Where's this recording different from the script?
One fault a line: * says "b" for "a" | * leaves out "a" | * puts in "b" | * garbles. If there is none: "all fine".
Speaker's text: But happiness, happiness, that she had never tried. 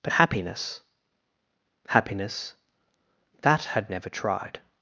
* leaves out "she"